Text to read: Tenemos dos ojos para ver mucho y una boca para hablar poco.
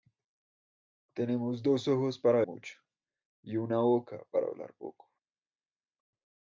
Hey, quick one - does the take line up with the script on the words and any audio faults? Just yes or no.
no